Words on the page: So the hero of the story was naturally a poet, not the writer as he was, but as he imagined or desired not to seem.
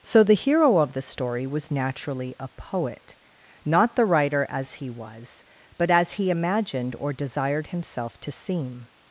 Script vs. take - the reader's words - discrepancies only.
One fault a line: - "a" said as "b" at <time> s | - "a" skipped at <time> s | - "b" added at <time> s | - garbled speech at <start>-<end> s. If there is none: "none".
- "not" said as "himself" at 7.7 s